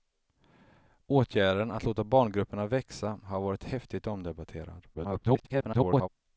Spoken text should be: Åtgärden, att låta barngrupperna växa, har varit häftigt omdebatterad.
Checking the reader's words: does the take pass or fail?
fail